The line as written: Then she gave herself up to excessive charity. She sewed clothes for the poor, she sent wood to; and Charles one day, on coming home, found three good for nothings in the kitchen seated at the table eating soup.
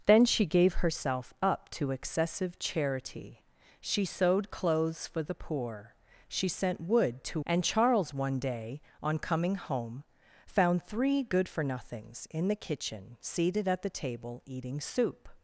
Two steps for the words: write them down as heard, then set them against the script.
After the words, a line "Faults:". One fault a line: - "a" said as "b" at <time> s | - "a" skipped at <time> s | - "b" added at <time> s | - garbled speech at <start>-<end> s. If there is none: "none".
Then she gave herself up to excessive charity. She sewed clothes for the poor, she sent wood to; and Charles one day, on coming home, found three good for nothings in the kitchen seated at the table eating soup.
Faults:
none